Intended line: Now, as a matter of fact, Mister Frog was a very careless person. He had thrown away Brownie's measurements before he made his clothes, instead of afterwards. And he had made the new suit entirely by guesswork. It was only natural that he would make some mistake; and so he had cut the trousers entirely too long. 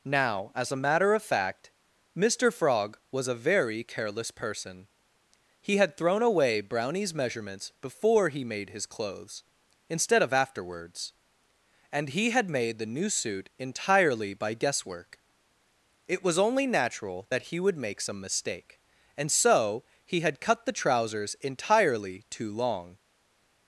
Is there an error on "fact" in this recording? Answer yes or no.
no